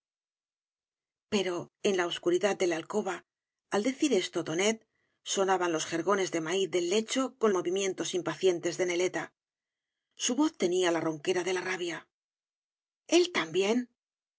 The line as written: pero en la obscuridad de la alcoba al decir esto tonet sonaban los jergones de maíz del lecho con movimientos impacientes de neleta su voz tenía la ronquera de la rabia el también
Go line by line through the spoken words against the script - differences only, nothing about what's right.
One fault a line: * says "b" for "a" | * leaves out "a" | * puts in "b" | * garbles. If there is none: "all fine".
all fine